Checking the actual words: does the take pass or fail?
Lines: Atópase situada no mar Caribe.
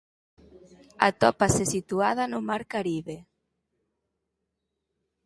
pass